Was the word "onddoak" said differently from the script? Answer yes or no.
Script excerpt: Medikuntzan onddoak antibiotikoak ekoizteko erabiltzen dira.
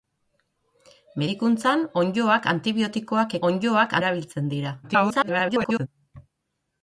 no